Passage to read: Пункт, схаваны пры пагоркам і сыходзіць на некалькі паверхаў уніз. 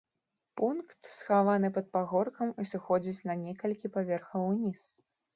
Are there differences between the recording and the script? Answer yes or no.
yes